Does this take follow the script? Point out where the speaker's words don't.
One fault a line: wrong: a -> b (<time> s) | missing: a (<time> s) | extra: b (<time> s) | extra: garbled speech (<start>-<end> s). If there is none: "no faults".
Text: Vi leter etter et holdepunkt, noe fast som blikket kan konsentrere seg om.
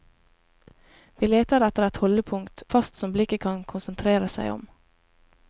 missing: noe (2.6 s)